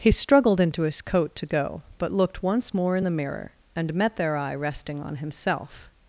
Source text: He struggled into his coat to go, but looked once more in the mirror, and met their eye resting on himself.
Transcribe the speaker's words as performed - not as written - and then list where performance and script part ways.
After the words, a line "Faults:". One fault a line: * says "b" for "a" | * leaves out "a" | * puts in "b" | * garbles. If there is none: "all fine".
He struggled into his coat to go, but looked once more in the mirror, and met their eye resting on himself.
Faults:
all fine